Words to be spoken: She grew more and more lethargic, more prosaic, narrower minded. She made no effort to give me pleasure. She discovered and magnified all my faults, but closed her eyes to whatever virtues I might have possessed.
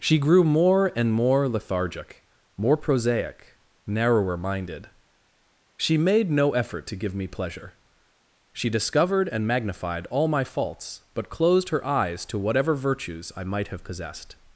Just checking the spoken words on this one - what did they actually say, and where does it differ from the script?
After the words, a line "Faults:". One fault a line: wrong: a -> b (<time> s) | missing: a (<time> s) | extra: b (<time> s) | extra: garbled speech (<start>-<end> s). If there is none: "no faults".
She grew more and more lethargic, more prosaic, narrower minded. She made no effort to give me pleasure. She discovered and magnified all my faults, but closed her eyes to whatever virtues I might have possessed.
Faults:
no faults